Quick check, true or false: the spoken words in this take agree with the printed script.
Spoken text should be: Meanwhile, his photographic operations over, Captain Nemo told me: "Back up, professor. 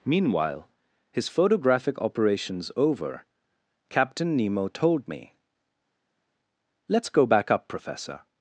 false